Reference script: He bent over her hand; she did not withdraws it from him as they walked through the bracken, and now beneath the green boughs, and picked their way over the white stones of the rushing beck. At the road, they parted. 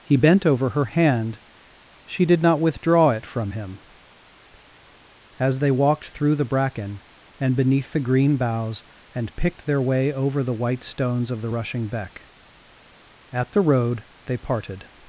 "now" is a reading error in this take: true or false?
true